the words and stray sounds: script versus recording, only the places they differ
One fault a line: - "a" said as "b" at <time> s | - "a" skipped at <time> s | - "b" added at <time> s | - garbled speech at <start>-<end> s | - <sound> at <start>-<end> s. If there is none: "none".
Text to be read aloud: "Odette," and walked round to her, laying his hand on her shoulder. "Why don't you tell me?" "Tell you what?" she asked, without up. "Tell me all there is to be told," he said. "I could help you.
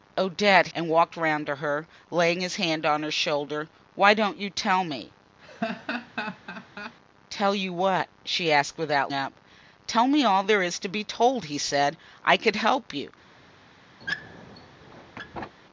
- laugh at 5.4-7.0 s
- squeak at 14.0-15.6 s